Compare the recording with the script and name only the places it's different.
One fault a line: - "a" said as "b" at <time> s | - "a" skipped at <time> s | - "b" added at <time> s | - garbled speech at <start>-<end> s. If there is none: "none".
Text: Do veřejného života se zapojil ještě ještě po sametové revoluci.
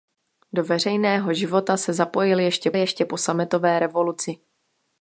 none